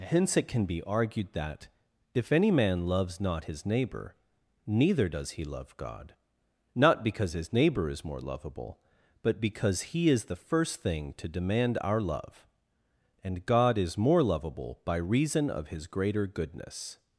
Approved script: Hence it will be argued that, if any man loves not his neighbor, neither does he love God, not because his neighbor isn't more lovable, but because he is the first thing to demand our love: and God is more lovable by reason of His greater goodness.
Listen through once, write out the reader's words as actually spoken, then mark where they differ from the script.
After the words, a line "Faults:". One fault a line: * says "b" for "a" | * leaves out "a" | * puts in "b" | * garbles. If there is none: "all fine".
Hence it can be argued that, if any man loves not his neighbor, neither does he love God, not because his neighbor is more lovable, but because he is the first thing to demand our love: and God is more lovable by reason of His greater goodness.
Faults:
* says "can" for "will"
* says "is" for "isn't"